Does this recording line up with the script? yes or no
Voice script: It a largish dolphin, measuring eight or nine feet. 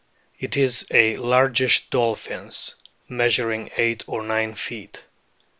no